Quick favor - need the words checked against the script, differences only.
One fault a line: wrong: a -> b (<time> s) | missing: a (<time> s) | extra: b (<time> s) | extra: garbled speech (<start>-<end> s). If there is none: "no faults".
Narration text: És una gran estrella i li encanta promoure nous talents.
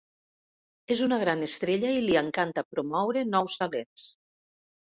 no faults